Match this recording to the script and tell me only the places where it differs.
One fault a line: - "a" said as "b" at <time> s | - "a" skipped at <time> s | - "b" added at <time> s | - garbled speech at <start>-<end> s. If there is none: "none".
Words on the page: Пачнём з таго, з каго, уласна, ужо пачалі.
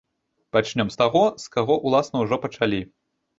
none